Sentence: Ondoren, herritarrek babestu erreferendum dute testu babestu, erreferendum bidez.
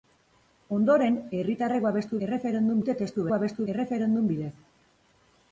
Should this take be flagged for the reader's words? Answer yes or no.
no